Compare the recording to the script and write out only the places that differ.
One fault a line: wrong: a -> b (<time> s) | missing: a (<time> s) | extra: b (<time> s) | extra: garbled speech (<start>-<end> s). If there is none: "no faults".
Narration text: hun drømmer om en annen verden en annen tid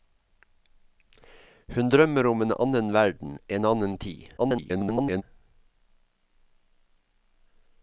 extra: garbled speech (4.4-5.2 s)